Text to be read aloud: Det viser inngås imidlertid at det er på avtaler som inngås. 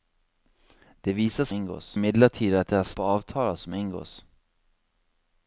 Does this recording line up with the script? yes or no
yes